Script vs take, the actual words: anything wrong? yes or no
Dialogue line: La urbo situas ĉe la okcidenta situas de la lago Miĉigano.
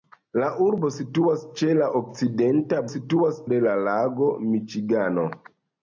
no